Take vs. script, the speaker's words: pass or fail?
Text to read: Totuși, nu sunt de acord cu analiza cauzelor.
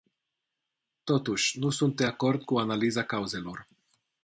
pass